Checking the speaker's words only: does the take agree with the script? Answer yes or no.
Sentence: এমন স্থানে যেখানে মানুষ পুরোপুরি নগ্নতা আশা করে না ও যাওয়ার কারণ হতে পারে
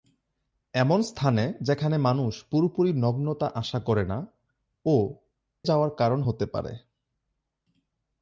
yes